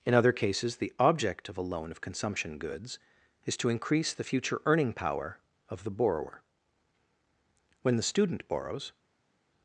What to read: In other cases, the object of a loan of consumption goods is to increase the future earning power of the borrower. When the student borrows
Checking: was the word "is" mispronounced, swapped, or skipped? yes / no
no